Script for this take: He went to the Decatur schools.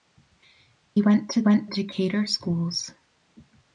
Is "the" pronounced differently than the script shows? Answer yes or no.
yes